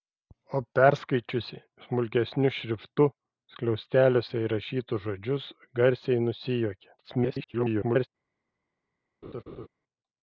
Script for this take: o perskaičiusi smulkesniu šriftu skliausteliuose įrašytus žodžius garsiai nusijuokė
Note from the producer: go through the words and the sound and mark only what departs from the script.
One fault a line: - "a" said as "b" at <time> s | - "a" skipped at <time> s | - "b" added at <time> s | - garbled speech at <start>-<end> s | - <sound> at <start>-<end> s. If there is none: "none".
- garbled speech at 7.0-8.1 s
- laugh at 9.2-9.7 s